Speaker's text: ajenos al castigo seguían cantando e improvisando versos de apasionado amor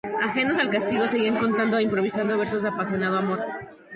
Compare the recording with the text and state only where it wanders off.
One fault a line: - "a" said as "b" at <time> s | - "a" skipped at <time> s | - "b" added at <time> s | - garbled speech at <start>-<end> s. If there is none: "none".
none